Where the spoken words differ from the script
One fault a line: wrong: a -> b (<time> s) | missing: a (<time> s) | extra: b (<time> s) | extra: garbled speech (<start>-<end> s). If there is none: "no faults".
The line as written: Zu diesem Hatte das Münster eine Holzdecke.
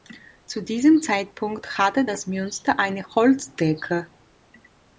extra: Zeitpunkt (1.0 s)